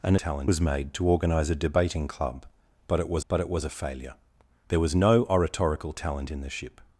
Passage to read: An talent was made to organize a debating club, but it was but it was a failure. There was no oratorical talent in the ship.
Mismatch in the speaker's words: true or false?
false